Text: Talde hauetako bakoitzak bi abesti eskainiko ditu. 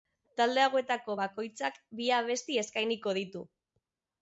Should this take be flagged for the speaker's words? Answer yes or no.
no